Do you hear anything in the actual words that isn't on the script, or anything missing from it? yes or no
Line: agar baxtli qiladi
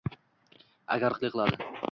no